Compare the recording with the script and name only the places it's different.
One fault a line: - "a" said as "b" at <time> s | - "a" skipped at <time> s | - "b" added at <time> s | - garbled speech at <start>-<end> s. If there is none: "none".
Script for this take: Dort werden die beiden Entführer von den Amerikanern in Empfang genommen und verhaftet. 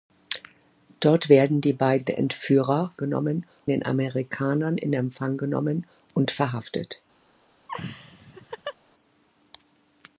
- "von" said as "genommen" at 3.0 s